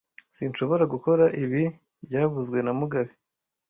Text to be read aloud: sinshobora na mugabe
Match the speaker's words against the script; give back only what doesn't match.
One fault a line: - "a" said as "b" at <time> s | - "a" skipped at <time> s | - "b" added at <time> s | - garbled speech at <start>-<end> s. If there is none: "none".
- "gukora ibi byavuzwe" added at 0.9 s